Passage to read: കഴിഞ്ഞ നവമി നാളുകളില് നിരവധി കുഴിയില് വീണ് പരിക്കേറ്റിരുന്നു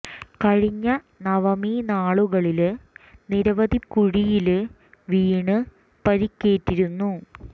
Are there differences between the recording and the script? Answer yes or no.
no